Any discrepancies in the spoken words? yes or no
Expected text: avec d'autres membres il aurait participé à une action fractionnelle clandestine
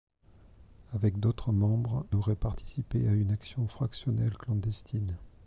yes